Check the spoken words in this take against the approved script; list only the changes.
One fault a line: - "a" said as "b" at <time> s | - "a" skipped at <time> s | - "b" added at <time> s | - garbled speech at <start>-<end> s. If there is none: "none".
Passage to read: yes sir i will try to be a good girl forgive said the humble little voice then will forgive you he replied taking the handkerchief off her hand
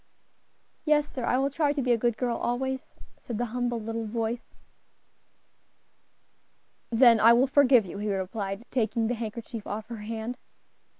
- "forgive" said as "always" at 2.4 s
- "i" added at 7.2 s